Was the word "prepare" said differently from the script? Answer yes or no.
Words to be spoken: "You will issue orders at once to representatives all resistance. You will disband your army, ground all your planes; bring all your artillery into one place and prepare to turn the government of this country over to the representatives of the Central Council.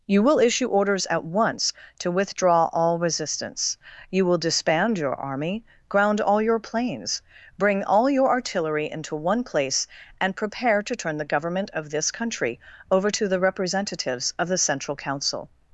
no